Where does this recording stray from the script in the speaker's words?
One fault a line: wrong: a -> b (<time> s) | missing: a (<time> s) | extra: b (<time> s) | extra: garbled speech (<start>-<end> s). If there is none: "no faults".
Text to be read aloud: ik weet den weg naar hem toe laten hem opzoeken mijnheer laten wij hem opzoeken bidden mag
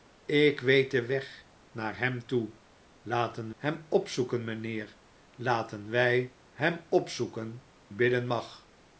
no faults